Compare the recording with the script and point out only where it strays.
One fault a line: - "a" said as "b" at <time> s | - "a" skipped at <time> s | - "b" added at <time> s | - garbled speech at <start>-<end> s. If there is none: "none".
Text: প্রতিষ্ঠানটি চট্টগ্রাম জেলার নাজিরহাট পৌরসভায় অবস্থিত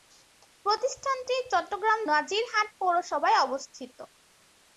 - "জেলার" skipped at 2.0 s